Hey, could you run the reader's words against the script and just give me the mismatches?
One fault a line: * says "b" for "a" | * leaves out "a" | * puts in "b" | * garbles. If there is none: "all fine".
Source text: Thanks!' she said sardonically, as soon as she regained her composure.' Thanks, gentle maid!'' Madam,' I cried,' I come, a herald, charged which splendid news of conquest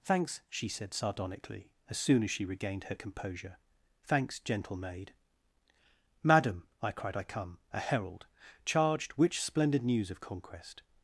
all fine